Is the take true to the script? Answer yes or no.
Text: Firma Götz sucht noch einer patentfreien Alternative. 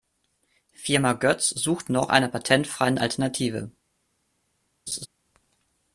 yes